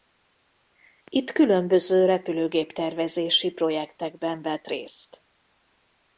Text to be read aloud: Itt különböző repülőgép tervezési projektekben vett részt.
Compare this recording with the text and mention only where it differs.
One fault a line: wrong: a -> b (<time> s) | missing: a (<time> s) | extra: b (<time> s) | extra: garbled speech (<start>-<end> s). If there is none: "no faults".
no faults